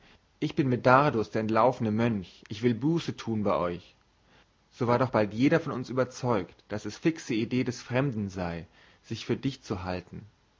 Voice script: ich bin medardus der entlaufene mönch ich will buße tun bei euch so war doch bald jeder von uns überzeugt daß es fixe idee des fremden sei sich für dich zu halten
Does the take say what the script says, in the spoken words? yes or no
yes